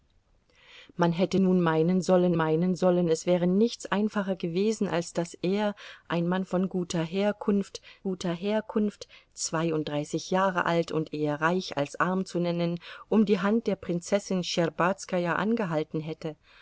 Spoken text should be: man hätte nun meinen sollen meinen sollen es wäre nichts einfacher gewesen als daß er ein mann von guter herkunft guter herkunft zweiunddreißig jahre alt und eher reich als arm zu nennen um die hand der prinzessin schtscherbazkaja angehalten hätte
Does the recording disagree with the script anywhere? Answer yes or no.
no